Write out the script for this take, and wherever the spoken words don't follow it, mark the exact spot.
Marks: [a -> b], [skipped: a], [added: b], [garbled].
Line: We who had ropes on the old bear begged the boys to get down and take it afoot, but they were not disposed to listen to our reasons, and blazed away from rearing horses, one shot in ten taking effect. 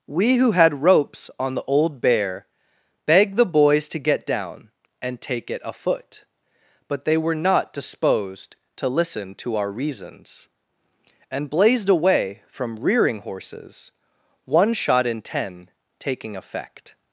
We who had ropes on the old bear begged the boys to get down and take it afoot, but they were not disposed to listen to our reasons, and blazed away from rearing horses, one shot in ten taking effect.